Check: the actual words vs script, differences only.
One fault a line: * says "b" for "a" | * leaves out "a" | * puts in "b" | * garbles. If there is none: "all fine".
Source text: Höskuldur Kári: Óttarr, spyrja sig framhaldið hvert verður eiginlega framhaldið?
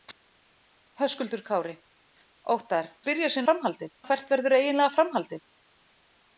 all fine